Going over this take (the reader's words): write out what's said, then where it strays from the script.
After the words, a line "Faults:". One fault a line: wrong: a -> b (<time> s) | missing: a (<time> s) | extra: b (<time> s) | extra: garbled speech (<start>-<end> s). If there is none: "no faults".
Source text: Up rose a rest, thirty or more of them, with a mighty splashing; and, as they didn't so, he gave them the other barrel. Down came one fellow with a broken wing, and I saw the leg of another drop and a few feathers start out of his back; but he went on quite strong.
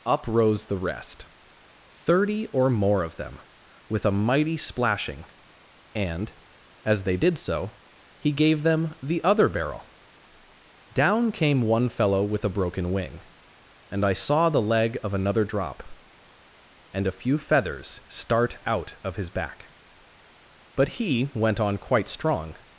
Up rose the rest, thirty or more of them, with a mighty splashing; and, as they did so, he gave them the other barrel. Down came one fellow with a broken wing, and I saw the leg of another drop and a few feathers start out of his back; but he went on quite strong.
Faults:
wrong: a -> the (0.7 s)
wrong: didn't -> did (7.2 s)